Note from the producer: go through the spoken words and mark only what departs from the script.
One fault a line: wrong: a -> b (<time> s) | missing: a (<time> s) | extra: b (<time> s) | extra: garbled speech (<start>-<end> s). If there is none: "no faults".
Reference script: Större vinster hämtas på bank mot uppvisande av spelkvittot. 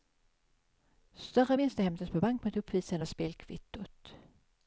no faults